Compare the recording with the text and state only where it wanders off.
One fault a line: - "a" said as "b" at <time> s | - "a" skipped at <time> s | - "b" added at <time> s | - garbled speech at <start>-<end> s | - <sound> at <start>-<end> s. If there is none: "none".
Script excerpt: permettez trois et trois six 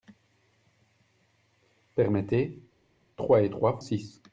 none